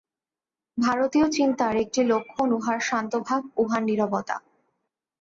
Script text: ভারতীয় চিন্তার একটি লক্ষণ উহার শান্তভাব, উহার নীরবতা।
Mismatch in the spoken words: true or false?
false